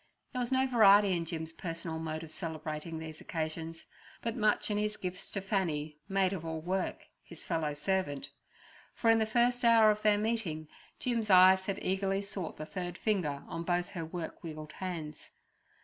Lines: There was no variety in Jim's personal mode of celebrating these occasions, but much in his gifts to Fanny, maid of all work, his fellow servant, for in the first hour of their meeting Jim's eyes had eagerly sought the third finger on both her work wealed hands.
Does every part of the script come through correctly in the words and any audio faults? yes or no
yes